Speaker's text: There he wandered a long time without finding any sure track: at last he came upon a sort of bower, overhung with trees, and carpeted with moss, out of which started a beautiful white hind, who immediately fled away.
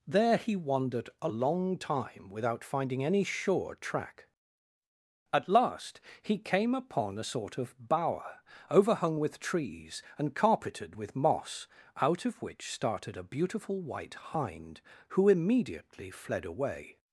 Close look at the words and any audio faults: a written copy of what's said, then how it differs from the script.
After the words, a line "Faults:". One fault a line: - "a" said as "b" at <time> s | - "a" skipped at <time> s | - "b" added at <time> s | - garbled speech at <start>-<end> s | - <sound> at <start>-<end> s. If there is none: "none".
There he wandered a long time without finding any sure track: at last he came upon a sort of bower, overhung with trees, and carpeted with moss, out of which started a beautiful white hind, who immediately fled away.
Faults:
none